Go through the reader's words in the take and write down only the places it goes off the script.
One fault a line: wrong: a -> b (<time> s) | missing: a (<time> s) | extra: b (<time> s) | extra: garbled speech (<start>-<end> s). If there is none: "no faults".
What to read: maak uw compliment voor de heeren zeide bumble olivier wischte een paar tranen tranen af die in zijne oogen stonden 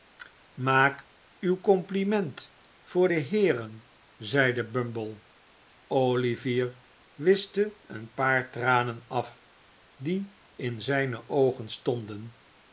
missing: tranen (9.0 s)